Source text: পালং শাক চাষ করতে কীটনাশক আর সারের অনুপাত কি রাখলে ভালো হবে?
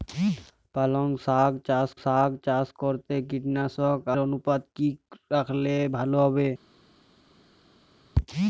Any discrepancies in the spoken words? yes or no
yes